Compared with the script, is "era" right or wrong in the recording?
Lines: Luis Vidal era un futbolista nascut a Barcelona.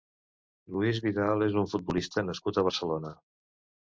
wrong